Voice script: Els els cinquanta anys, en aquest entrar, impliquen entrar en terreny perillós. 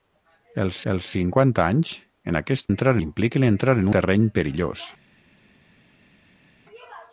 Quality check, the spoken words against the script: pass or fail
pass